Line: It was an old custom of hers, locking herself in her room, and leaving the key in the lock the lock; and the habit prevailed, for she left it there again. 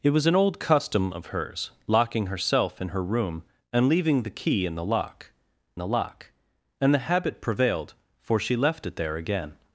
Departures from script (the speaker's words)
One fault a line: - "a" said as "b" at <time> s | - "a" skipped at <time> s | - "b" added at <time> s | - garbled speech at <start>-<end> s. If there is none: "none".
none